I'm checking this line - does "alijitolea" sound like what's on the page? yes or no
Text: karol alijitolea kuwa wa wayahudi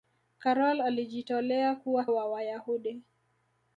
yes